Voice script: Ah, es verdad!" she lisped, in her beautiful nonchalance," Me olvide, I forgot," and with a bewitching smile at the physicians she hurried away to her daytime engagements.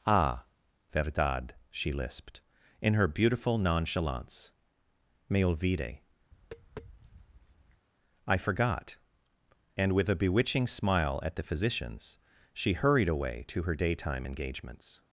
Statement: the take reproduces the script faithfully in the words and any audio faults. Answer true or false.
false